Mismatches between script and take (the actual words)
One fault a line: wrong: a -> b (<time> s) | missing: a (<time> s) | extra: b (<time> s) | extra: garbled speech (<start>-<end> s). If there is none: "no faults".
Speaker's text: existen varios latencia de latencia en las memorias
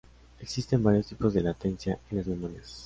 wrong: latencia -> tipos (1.0 s)